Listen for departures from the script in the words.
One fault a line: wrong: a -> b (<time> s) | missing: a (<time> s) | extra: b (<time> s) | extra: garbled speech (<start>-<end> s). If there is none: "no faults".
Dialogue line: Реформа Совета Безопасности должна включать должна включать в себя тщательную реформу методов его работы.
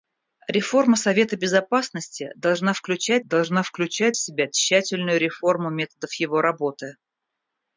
no faults